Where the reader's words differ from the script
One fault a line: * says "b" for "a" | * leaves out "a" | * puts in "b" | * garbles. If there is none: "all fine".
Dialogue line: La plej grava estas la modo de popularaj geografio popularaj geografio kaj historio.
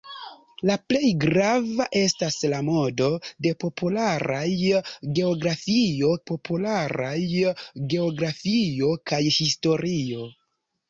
all fine